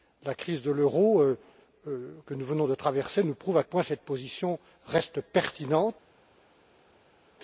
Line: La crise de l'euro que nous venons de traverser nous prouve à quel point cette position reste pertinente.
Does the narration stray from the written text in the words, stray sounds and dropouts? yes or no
yes